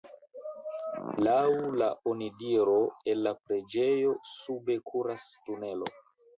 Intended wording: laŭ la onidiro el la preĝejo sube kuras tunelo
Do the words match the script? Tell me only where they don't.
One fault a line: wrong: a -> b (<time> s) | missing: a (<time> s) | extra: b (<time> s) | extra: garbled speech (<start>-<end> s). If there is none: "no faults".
no faults